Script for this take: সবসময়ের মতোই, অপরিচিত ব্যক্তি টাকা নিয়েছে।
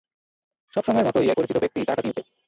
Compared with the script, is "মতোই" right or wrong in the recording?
right